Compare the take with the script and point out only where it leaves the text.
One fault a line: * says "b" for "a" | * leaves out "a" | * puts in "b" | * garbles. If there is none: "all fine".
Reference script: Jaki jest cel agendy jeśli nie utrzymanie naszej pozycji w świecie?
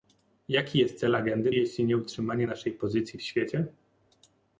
all fine